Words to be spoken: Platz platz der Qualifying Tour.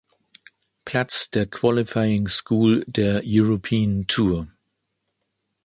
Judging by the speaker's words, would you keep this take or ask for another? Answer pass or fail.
fail